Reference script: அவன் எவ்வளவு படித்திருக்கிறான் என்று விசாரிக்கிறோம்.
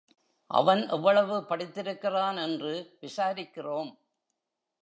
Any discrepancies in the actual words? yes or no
no